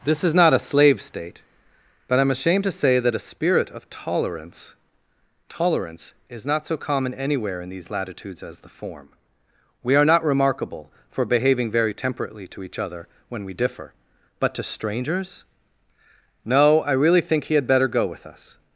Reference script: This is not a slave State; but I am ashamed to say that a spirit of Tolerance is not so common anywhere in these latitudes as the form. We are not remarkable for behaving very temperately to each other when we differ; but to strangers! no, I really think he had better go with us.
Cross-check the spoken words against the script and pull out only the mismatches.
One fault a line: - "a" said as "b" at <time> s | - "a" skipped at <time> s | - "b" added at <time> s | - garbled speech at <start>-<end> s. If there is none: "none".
- "Tolerance" added at 5.5 s